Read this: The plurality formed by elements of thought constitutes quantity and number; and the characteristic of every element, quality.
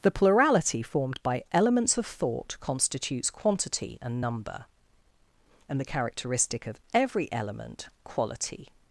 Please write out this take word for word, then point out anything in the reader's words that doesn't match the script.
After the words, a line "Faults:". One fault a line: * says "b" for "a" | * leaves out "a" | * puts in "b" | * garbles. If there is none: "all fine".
The plurality formed by elements of thought constitutes quantity and number; and the characteristic of every element, quality.
Faults:
all fine